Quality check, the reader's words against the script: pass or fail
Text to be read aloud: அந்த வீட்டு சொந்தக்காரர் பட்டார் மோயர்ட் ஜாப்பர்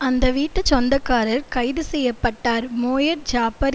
fail